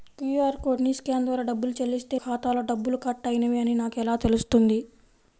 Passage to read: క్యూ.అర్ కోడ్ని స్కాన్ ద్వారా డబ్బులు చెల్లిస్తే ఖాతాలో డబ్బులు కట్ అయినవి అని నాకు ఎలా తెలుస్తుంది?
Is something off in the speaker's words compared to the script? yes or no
no